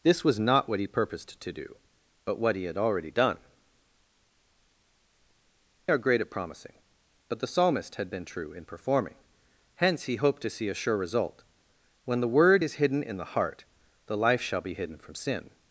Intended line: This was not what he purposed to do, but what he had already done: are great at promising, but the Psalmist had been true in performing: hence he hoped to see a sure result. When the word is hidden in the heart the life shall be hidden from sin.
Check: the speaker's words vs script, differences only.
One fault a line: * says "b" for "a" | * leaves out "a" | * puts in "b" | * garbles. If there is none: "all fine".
all fine